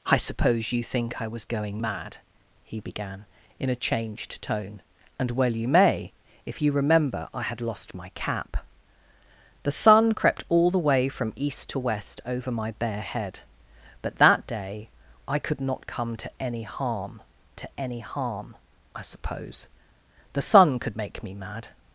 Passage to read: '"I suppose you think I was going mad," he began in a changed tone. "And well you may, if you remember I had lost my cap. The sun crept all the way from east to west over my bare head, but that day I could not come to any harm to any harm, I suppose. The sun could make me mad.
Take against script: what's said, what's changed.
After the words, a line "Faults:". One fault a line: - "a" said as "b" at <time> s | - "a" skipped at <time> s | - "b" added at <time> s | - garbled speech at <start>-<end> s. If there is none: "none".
'"I suppose you think I was going mad," he began in a changed tone. "And well you may, if you remember I had lost my cap. The sun crept all the way from east to west over my bare head, but that day I could not come to any harm to any harm, I suppose. The sun could make me mad.
Faults:
none